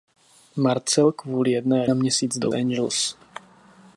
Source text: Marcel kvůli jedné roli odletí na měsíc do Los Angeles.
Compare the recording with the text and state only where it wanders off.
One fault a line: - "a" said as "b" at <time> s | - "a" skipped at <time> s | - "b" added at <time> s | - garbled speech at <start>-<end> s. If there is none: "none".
- "roli odletí" skipped at 1.9 s
- "Los" skipped at 2.5 s